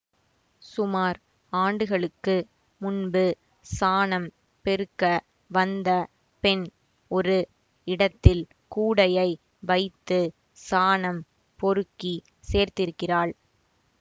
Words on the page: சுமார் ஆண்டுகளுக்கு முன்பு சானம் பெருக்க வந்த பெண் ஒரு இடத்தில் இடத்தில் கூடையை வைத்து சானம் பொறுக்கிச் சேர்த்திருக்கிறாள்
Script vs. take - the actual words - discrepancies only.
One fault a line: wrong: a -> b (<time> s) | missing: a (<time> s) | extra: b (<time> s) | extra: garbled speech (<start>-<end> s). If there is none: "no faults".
missing: இடத்தில் (8.4 s)